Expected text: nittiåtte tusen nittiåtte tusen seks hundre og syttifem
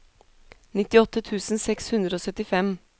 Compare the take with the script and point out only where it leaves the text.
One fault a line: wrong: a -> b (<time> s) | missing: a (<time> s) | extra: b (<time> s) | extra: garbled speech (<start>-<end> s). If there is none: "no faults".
missing: nittiåtte tusen (1.6 s)